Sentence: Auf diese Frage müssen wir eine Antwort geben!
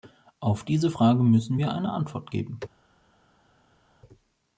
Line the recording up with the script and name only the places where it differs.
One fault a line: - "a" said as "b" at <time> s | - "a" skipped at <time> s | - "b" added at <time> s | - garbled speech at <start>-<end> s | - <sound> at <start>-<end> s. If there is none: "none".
none